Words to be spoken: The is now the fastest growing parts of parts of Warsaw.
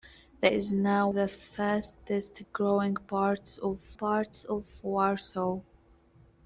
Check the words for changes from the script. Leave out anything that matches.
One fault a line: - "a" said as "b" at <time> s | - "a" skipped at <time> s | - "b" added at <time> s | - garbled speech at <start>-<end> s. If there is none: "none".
none